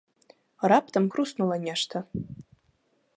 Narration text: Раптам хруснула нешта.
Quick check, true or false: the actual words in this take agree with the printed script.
true